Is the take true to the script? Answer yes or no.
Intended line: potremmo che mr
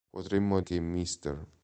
yes